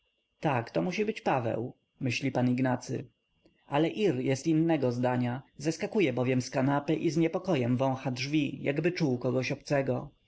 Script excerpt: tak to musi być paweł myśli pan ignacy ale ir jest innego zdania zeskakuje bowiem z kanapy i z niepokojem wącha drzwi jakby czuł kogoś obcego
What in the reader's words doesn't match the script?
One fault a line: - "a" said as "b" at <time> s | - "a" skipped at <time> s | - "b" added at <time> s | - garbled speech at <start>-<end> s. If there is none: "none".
none